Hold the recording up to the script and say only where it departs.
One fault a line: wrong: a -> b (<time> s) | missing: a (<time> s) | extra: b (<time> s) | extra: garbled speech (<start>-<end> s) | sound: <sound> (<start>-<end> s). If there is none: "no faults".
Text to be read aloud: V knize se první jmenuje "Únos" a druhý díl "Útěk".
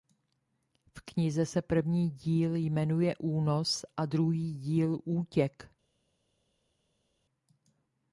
extra: díl (2.1 s)